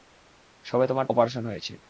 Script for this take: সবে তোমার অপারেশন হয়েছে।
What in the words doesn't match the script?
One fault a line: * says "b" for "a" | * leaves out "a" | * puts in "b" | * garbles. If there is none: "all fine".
all fine